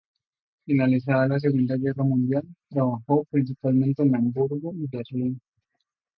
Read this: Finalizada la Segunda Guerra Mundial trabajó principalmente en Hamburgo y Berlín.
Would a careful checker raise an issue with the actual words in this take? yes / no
no